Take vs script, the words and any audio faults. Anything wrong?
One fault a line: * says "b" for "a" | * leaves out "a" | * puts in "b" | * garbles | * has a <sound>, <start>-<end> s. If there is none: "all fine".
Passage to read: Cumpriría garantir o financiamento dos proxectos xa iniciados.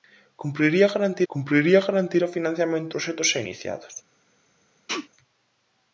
* puts in "cumpriría garantir"
* leaves out "dos"
* has a sneeze, 4.9-5.1 s